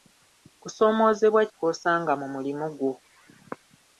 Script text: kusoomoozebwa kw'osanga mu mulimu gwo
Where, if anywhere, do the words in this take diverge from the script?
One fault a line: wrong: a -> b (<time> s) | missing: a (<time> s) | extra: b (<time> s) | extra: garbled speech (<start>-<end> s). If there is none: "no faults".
no faults